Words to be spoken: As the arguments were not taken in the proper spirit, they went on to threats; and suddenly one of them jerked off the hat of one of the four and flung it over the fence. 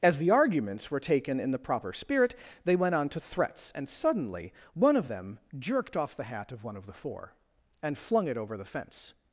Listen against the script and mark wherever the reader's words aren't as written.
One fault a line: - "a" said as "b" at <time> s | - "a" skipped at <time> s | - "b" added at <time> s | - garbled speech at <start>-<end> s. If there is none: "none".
- "not" skipped at 1.0 s